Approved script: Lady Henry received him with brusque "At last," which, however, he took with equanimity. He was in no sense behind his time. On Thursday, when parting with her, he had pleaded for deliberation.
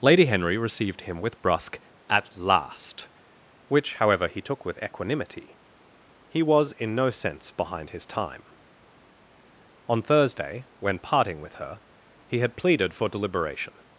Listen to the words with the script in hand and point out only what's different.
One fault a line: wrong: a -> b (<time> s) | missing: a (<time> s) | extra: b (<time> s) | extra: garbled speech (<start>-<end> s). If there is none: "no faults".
no faults